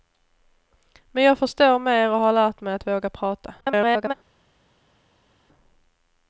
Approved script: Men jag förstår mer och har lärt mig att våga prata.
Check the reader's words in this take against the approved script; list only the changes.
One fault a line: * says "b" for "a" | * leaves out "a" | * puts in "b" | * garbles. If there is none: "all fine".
* garbles